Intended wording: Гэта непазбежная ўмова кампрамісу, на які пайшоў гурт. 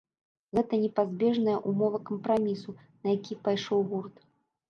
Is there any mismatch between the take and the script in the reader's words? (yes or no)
no